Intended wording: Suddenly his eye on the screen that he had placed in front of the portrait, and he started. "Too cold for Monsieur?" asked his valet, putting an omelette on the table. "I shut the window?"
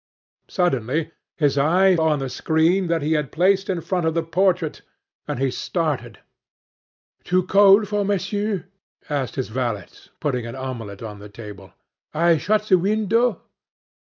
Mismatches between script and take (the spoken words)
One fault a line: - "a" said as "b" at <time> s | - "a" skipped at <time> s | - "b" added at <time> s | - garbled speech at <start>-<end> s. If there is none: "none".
none